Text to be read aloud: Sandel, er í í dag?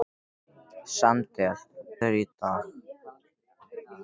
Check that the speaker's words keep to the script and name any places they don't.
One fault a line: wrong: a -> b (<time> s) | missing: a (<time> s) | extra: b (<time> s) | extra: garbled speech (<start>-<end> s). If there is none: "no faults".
no faults